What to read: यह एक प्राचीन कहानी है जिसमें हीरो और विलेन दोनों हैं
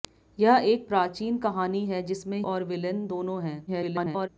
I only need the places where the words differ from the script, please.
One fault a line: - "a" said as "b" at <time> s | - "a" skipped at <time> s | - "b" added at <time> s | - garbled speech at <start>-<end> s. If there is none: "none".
- "हीरो" skipped at 2.4 s
- garbled speech at 3.7-4.3 s